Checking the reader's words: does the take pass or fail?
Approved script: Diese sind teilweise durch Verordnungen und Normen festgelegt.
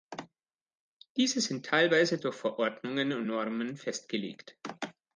pass